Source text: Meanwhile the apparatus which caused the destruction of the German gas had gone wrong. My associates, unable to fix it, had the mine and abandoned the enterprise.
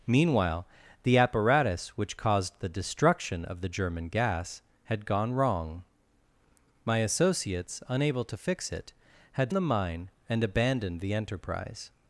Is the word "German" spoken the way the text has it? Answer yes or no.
yes